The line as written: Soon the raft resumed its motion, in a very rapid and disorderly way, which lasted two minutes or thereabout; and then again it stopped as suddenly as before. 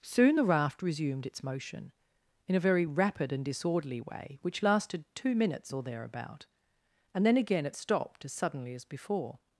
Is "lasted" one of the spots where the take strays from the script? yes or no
no